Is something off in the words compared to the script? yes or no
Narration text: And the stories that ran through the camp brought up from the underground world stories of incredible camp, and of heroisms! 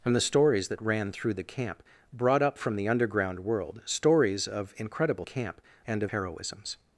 no